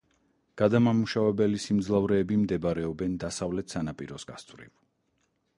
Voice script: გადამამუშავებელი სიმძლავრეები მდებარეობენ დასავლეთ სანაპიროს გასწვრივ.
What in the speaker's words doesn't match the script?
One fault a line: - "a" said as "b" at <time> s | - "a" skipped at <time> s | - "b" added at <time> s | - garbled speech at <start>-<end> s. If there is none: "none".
none